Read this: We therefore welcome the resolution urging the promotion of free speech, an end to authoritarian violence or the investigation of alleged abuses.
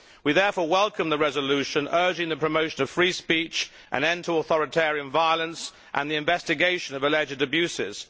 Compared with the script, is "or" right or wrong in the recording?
wrong